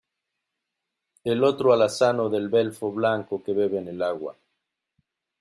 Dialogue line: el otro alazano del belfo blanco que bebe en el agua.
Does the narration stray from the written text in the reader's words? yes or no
no